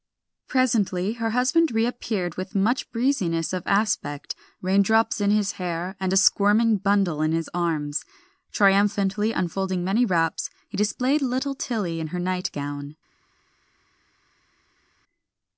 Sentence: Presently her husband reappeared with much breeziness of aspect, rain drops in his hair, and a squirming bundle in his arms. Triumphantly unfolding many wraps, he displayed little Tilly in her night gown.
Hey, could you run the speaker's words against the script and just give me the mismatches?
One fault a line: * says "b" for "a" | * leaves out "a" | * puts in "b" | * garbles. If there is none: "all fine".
all fine